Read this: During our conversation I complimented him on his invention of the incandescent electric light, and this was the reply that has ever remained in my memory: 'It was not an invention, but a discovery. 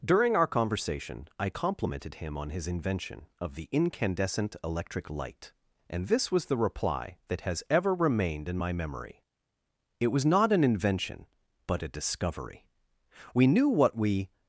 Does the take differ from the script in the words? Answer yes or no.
yes